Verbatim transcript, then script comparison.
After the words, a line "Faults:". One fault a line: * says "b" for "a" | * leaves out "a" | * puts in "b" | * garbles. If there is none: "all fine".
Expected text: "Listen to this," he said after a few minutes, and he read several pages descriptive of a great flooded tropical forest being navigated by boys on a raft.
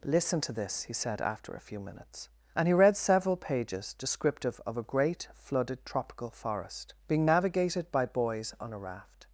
"Listen to this," he said after a few minutes, and he read several pages descriptive of a great flooded tropical forest being navigated by boys on a raft.
Faults:
all fine